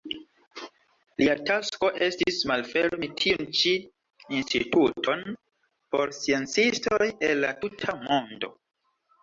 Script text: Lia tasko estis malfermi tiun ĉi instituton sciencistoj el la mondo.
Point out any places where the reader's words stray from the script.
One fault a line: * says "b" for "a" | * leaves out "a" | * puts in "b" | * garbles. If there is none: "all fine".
* puts in "por"
* puts in "tuta"